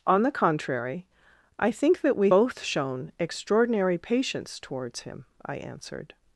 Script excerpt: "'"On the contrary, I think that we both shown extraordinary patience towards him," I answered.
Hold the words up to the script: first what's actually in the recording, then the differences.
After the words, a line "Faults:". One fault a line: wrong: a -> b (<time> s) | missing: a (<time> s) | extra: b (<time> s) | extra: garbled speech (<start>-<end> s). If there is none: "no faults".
"'"On the contrary, I think that we both shown extraordinary patience towards him," I answered.
Faults:
no faults